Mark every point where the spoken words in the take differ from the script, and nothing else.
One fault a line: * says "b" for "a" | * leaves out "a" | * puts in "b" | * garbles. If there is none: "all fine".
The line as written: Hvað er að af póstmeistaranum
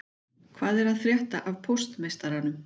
* puts in "frétta"